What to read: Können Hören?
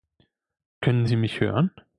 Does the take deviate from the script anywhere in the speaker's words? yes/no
yes